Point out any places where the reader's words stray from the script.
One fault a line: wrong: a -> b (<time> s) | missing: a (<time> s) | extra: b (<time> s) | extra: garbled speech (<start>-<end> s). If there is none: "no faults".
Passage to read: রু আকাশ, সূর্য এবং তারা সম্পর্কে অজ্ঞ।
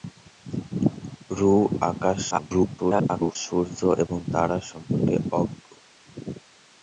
extra: garbled speech (2.3-3.4 s)